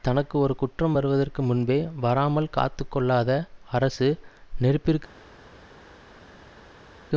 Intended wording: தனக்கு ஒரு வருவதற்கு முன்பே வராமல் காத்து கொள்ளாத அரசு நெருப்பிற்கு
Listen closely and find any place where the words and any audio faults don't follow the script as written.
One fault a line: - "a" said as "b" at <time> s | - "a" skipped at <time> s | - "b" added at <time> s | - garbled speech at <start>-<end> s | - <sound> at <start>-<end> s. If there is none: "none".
- "குற்றம்" added at 0.6 s